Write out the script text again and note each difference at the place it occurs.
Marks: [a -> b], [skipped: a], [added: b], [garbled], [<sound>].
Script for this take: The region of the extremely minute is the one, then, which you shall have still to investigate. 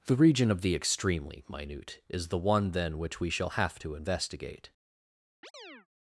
The region of the extremely minute is the one, then, which [you -> we] shall have [skipped: still] to investigate. [chirp]